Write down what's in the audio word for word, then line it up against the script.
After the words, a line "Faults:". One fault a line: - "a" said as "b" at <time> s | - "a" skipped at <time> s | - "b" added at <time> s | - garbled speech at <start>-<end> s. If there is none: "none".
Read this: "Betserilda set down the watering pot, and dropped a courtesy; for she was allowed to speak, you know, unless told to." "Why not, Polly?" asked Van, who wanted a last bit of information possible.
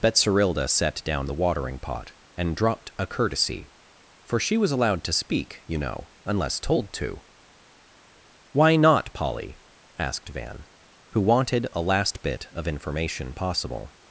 "Betserilda set down the watering pot, and dropped a courtesy; for she was allowed to speak, you know, unless told to." "Why not, Polly?" asked Van, who wanted a last bit of information possible.
Faults:
none